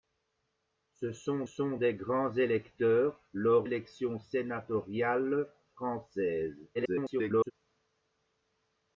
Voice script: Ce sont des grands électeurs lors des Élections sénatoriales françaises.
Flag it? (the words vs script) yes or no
yes